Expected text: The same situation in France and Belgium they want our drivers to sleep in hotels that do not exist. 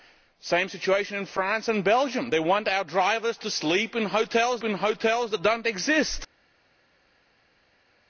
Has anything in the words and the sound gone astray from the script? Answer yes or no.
yes